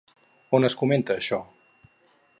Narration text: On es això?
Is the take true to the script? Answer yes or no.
no